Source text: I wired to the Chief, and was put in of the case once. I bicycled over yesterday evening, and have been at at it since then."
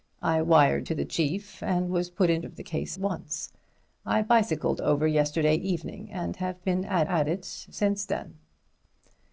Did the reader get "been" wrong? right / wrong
right